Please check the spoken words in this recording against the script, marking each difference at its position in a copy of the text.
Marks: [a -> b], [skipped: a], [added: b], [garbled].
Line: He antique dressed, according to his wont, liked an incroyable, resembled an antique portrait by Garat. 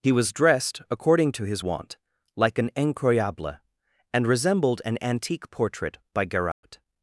He [antique -> was] dressed, according to his wont, [liked -> like] an incroyable, [added: and] resembled an antique portrait by Garat.